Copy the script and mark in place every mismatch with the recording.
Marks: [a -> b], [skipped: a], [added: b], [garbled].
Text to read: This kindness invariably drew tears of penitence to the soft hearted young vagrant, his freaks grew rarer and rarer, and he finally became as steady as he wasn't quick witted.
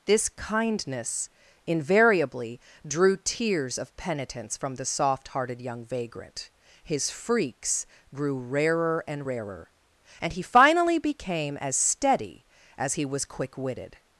This kindness invariably drew tears of penitence [to -> from] the soft hearted young vagrant, his freaks grew rarer and rarer, and he finally became as steady as he [wasn't -> was] quick witted.